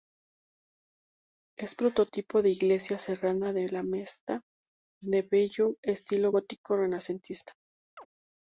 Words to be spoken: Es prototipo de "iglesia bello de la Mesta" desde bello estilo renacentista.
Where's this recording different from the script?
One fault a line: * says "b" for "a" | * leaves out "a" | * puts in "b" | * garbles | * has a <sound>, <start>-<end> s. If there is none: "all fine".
* says "serrana" for "bello"
* says "de" for "desde"
* puts in "gótico"
* has a chirp, 8.0-8.1 s